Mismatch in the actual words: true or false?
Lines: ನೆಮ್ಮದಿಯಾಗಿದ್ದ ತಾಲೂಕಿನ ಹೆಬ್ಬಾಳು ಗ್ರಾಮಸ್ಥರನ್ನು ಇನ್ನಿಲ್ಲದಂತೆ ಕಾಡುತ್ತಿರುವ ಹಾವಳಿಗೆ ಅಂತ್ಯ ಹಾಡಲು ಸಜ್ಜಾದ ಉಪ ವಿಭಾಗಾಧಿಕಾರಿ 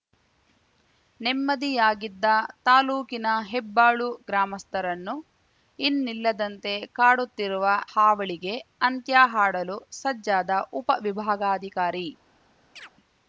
false